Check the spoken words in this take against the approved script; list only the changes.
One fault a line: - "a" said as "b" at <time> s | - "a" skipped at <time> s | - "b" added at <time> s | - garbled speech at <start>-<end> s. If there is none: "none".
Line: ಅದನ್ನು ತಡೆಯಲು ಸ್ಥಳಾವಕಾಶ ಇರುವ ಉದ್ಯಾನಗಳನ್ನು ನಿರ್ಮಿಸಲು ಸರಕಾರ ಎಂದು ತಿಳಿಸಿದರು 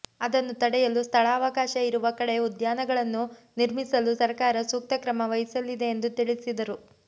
- "ಕಡೆ" added at 2.2 s
- "ಸೂಕ್ತ ಕ್ರಮ ವಹಿಸಲಿದೆ" added at 4.7 s